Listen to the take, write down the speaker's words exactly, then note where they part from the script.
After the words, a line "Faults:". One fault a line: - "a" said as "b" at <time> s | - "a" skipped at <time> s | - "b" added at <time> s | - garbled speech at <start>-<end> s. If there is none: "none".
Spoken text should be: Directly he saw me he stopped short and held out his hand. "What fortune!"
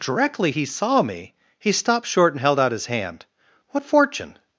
Directly he saw me he stopped short and held out his hand. "What fortune!"
Faults:
none